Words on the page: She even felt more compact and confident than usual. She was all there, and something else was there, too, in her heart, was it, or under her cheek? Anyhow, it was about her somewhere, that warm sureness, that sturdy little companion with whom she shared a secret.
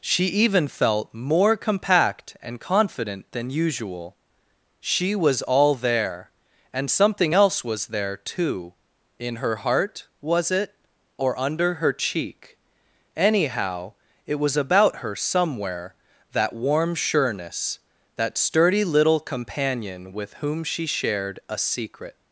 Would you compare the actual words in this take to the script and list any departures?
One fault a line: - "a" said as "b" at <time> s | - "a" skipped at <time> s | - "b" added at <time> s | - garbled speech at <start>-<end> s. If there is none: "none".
none